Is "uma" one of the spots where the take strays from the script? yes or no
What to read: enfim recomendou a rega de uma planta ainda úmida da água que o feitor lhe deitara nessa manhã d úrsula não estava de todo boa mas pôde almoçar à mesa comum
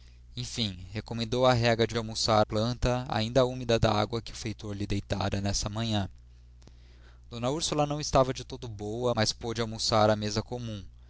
yes